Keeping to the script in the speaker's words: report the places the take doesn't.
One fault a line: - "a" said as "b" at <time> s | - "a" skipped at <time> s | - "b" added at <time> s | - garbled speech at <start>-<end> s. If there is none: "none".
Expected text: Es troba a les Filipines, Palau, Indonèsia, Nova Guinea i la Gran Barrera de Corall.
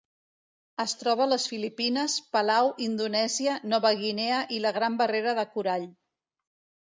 none